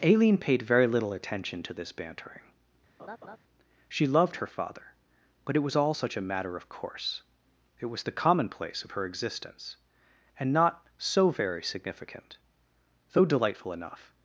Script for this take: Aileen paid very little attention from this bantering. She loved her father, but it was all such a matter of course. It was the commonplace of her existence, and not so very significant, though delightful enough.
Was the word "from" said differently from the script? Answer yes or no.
yes